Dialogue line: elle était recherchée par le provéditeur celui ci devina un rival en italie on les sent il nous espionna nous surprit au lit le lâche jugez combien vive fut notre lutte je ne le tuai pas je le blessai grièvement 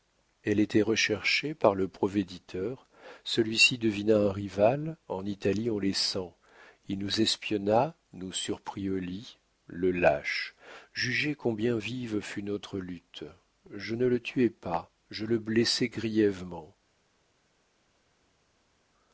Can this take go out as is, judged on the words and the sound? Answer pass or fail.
pass